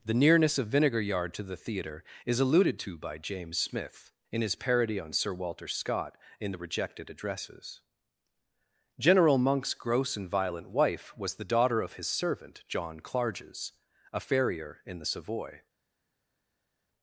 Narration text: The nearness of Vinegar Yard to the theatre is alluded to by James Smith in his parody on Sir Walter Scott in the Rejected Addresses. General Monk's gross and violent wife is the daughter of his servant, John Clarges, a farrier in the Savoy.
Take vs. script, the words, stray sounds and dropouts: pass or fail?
fail